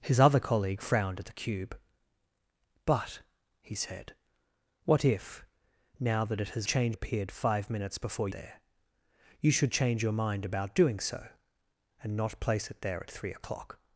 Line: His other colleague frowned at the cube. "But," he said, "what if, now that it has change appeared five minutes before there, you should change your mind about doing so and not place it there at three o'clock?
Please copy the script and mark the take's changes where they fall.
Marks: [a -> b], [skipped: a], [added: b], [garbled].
His other colleague frowned at the cube. "But," he said, "what if, now that it has change appeared five minutes before there, you should change your mind about doing so and not place it there at three o'clock?